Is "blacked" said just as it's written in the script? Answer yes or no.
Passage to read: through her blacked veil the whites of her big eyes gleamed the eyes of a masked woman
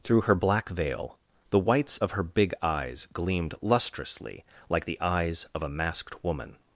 no